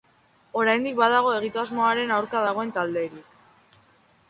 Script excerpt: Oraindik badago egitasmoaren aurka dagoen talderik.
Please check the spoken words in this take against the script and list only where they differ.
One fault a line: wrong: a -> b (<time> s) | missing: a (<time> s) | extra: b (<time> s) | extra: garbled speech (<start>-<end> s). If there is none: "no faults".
no faults